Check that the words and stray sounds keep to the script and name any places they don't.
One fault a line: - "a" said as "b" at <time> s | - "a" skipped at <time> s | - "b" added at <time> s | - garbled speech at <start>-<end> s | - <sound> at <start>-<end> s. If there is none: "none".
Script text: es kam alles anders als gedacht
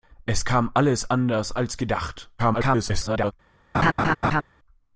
- garbled speech at 2.4-3.3 s
- laugh at 3.7-4.4 s